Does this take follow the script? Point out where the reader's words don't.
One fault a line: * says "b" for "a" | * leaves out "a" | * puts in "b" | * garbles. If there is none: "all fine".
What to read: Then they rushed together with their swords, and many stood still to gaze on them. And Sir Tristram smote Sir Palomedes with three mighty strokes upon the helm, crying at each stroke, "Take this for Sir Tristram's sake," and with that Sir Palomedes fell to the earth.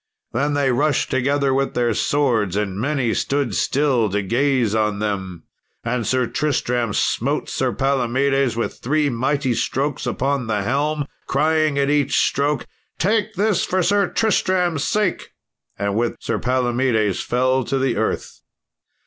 * leaves out "that"